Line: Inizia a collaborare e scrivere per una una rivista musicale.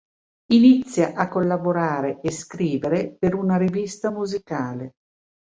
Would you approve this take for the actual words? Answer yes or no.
no